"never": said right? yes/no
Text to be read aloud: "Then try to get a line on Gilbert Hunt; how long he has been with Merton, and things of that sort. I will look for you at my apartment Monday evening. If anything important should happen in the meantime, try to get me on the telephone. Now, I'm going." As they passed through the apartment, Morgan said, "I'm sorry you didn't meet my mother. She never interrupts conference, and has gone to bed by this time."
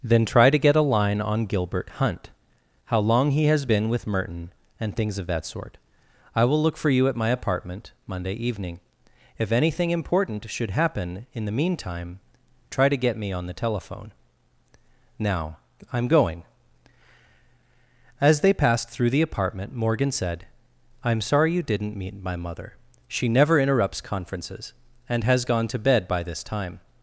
yes